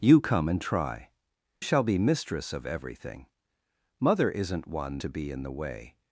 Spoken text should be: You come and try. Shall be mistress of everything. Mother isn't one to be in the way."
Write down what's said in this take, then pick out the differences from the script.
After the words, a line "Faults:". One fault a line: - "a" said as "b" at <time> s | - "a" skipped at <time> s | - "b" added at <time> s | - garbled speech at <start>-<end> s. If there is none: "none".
You come and try. Shall be mistress of everything. Mother isn't one to be in the way."
Faults:
none